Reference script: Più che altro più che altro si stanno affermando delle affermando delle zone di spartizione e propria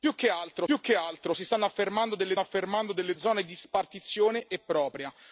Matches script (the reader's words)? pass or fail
pass